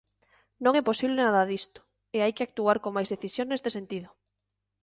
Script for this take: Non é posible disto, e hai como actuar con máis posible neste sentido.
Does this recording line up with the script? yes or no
no